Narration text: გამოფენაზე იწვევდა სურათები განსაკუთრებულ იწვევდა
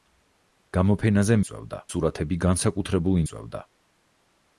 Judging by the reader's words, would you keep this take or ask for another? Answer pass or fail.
pass